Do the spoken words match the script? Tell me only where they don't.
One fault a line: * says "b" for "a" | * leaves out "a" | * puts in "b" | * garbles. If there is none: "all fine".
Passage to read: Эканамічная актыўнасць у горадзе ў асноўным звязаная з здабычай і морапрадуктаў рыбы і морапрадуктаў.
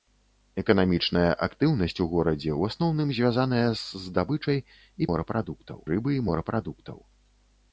all fine